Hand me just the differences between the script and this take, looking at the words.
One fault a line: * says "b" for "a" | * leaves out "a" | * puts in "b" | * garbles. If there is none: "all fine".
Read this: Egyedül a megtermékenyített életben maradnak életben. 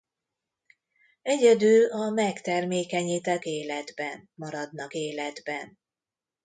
all fine